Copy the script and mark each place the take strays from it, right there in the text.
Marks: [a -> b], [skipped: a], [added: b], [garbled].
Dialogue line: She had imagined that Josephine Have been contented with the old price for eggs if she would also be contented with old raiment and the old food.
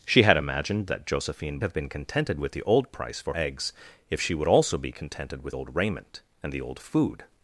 She had imagined that Josephine Have been contented with the old price for eggs if she would also be contented with old raiment and the old food.